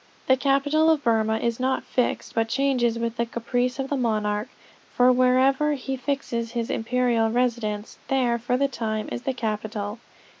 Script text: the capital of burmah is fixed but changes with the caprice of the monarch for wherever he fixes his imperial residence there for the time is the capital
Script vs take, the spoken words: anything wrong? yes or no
yes